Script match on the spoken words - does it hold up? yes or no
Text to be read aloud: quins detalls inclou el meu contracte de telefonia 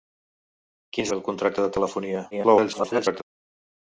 no